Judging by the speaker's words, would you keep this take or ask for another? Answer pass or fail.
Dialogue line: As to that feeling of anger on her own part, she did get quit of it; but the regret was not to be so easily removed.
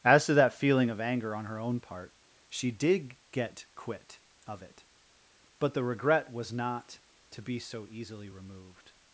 pass